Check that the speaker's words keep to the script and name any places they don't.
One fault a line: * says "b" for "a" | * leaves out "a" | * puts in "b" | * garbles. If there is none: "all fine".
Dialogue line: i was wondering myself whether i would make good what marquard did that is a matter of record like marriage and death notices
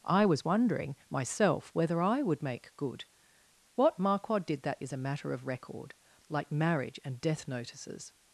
all fine